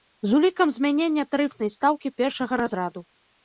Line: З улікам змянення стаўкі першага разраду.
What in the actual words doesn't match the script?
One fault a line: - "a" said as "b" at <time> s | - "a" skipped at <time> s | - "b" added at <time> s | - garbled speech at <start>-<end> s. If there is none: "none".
- "тарыфнай" added at 1.4 s